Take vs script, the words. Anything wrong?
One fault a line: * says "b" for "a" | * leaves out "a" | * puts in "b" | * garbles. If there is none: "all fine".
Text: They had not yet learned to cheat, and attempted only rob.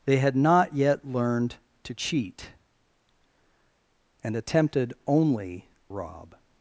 all fine